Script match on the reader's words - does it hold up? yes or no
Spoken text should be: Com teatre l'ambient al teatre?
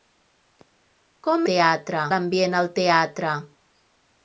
yes